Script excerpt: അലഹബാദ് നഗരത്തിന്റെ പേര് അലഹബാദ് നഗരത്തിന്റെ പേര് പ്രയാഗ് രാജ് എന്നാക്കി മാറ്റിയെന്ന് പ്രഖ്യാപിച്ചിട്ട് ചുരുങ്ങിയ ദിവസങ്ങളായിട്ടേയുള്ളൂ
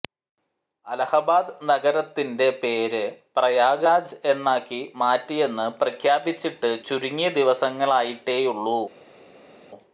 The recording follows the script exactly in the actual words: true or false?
false